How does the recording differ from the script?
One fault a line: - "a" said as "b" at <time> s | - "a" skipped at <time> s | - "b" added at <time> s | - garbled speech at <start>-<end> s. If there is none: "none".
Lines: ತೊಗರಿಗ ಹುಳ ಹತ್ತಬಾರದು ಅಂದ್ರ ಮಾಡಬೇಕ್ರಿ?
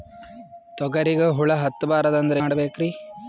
none